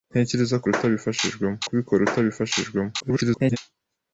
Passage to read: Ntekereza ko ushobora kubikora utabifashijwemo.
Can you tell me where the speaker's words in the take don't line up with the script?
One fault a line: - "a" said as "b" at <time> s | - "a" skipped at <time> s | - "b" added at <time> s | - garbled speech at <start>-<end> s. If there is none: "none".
- "ushobora" said as "utabifashijwemo" at 0.7 s
- garbled speech at 3.0-3.6 s